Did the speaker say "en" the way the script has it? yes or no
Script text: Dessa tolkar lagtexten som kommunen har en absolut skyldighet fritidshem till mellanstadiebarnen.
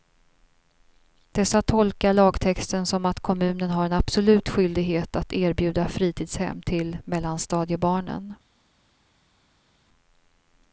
yes